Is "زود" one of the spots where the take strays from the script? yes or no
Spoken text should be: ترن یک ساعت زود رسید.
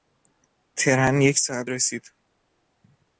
yes